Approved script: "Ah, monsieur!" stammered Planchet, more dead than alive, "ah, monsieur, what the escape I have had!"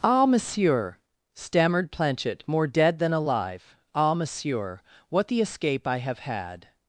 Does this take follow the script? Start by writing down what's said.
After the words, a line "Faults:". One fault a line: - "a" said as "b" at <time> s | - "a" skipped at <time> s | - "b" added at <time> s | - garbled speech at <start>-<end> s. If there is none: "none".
"Ah, monsieur!" stammered Planchet, more dead than alive, "ah, monsieur, what the escape I have had!"
Faults:
none